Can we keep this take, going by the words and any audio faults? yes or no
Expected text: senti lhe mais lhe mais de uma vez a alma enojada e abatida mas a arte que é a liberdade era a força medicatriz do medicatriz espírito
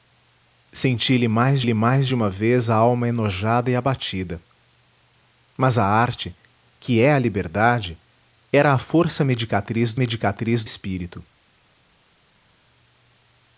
yes